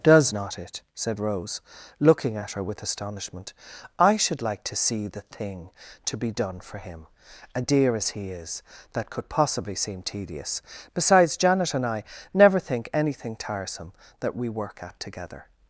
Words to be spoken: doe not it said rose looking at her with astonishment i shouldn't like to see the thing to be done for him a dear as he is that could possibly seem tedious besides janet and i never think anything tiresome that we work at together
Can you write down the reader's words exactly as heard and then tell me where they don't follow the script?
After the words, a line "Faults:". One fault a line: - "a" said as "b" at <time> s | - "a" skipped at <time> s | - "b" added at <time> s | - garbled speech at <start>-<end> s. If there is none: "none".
does not it said rose looking at her with astonishment i should like to see the thing to be done for him a dear as he is that could possibly seem tedious besides janet and i never think anything tiresome that we work at together
Faults:
- "doe" said as "does" at 0.0 s
- "shouldn't" said as "should" at 4.1 s